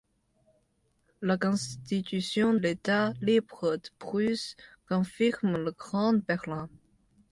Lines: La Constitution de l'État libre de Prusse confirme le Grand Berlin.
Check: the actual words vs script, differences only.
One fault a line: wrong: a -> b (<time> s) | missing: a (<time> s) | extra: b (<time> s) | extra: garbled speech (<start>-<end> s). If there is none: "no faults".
missing: de (2.5 s)